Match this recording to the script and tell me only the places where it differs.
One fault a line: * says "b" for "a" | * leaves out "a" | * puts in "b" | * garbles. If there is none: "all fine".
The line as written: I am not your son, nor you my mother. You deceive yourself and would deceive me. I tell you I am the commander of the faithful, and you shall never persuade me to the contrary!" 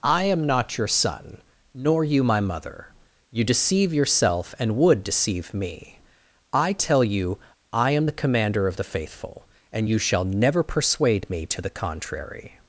all fine